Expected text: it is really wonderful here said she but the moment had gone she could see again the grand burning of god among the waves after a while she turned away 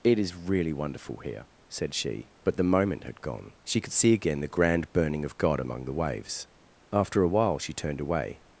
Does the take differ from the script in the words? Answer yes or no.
no